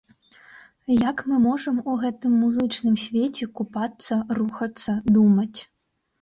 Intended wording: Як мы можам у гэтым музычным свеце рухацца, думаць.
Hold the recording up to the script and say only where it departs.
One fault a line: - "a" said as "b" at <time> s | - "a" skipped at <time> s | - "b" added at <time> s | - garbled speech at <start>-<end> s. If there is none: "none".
- "купацца" added at 3.6 s